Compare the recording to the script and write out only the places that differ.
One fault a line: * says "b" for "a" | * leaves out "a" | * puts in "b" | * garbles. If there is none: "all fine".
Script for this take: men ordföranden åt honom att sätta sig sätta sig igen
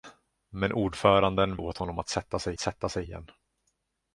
all fine